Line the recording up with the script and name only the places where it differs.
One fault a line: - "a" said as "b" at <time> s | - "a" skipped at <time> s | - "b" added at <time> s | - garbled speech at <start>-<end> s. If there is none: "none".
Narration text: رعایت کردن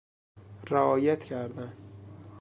none